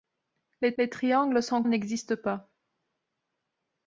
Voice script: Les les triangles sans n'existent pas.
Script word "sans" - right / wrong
right